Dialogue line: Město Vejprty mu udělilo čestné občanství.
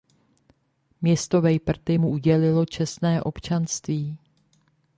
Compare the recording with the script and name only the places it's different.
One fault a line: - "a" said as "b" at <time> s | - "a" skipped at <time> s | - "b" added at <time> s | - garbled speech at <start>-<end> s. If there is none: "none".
none